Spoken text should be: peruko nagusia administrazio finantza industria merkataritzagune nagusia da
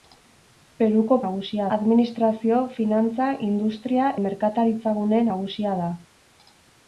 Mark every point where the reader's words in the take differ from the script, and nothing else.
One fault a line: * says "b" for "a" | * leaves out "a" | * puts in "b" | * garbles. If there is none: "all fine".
all fine